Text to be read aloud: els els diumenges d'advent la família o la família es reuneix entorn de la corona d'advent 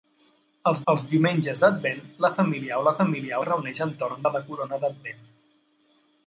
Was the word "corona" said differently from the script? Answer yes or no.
no